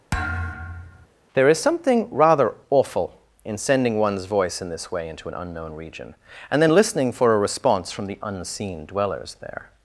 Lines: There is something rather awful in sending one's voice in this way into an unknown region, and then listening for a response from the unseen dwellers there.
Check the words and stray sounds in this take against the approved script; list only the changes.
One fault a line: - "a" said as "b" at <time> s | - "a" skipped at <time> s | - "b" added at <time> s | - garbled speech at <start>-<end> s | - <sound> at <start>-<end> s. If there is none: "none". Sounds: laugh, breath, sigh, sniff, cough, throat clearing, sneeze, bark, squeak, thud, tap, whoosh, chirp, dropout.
- thud at 0.1-1.1 s